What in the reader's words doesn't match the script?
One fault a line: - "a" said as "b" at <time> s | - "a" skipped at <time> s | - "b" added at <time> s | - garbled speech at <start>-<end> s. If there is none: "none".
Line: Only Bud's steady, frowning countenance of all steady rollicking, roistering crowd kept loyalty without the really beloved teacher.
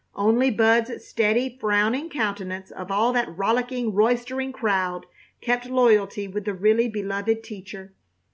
- "steady" said as "that" at 3.1 s
- "without" said as "with" at 6.3 s